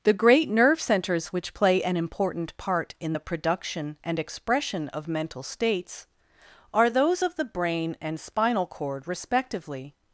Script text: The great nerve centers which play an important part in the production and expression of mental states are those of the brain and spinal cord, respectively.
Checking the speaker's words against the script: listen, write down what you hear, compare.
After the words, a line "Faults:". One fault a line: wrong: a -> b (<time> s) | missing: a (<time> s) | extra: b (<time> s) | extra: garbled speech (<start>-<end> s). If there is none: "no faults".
The great nerve centers which play an important part in the production and expression of mental states are those of the brain and spinal cord, respectively.
Faults:
no faults